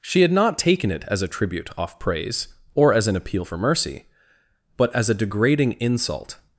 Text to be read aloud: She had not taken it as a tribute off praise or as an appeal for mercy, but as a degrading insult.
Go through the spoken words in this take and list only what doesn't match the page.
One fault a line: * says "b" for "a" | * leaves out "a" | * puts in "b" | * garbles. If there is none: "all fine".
all fine